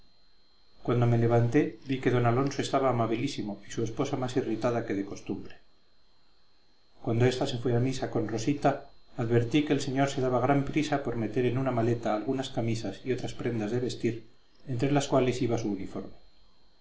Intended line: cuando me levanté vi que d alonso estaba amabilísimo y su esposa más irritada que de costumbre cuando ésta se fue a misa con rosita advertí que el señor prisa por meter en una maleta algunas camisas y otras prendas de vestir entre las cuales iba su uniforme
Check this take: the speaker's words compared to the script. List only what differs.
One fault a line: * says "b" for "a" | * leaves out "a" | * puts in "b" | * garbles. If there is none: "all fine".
* puts in "se daba gran"